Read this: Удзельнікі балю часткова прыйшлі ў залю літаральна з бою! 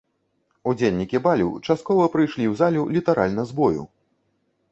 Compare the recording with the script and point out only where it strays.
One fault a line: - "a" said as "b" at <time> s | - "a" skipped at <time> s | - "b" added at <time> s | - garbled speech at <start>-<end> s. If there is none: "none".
none